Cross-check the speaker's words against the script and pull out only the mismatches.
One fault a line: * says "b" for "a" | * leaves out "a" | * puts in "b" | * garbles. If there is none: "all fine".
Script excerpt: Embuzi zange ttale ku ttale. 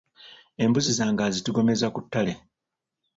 * says "azitigomeza" for "ttale"